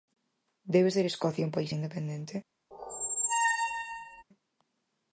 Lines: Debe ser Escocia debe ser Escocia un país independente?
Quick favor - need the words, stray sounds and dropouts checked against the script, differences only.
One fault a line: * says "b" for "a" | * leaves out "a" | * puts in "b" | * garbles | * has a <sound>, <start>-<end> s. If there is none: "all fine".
* leaves out "debe ser Escocia"
* has a squeak, 2.7-4.2 s